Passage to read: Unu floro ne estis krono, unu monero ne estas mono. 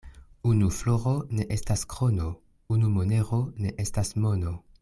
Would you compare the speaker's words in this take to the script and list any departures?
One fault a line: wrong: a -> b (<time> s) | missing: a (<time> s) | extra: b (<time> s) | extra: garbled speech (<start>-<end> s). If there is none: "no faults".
wrong: estis -> estas (1.6 s)